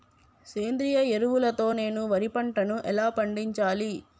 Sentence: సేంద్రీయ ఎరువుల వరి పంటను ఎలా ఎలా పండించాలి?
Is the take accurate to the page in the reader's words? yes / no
no